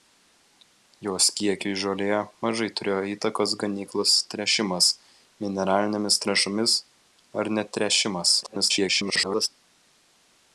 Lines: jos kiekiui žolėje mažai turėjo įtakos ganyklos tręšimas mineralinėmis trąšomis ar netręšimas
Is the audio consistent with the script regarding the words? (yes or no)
no